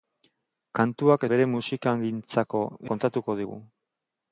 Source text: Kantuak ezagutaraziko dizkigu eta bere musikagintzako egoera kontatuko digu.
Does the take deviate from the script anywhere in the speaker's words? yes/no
yes